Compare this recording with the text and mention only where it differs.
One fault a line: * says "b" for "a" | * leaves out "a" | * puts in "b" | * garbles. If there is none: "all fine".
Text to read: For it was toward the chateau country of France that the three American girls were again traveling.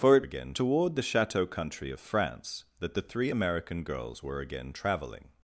* says "again" for "was"